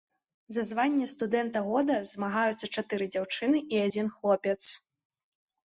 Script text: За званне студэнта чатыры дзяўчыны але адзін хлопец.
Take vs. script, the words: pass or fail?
fail